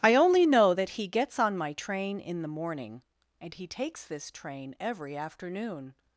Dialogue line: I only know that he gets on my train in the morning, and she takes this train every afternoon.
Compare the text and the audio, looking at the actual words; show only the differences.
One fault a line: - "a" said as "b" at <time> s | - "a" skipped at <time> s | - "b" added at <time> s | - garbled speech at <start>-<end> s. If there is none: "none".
- "she" said as "he" at 3.5 s